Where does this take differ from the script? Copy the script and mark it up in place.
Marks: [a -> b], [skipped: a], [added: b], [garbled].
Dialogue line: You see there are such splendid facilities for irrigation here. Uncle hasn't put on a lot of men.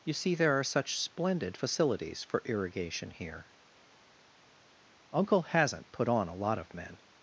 You see there are such splendid facilities for irrigation here. Uncle hasn't put on a lot of men.